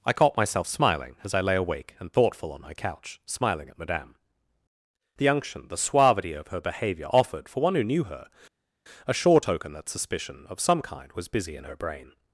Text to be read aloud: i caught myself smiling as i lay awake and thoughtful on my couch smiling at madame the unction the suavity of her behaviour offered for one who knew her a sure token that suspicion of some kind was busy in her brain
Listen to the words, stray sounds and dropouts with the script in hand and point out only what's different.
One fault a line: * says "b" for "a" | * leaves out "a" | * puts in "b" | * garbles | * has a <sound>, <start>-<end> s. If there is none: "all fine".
all fine